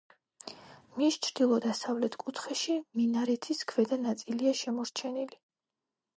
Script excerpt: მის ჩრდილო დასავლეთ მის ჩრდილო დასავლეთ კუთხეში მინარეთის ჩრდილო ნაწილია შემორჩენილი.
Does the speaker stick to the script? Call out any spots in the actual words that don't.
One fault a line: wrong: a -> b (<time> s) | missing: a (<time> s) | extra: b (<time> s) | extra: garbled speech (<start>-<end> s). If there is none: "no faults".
missing: მის ჩრდილო დასავლეთ (2.1 s)
wrong: ჩრდილო -> ქვედა (3.7 s)